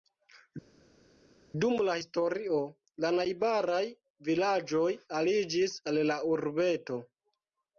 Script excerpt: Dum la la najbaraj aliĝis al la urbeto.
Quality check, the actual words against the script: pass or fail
fail